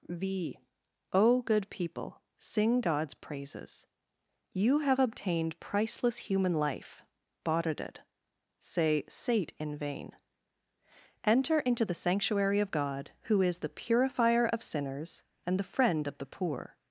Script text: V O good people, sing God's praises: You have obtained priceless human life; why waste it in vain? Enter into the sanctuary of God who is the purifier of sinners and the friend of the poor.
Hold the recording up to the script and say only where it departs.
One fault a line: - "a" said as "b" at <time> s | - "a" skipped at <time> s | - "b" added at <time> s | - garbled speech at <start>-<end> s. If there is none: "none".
- "why waste it" said as "bought it say sate" at 7.4 s